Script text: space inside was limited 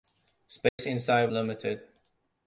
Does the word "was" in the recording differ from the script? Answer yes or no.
yes